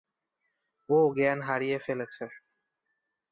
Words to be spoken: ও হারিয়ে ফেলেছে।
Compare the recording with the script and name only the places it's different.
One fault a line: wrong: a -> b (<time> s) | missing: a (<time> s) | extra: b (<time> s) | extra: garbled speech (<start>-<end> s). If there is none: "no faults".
extra: জ্ঞান (1.2 s)